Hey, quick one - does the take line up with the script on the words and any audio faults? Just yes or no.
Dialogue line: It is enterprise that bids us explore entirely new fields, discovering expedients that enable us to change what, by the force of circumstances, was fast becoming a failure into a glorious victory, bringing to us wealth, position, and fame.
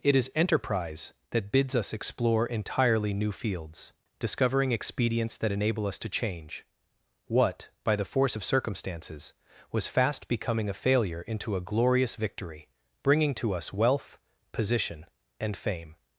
yes